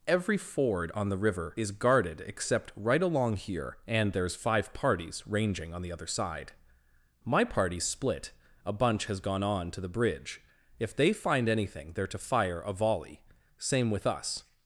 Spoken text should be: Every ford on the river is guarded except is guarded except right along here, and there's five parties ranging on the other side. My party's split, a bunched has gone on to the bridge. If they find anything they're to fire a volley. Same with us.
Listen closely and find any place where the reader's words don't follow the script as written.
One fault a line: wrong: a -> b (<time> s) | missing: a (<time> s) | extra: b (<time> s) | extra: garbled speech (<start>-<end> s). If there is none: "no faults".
missing: is guarded except (2.7 s)
wrong: bunched -> bunch (8.7 s)